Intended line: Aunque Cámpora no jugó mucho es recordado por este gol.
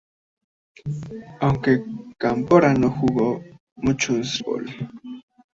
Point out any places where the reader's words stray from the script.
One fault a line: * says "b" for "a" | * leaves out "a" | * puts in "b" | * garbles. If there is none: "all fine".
* leaves out "recordado por este"